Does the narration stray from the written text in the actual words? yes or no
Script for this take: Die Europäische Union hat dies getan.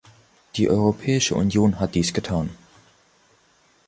no